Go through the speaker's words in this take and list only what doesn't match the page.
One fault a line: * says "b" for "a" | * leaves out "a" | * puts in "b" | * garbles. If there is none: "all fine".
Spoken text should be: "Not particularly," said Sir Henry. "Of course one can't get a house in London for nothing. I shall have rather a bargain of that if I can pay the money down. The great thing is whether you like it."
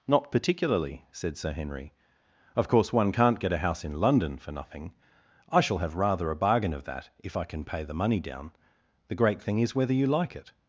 all fine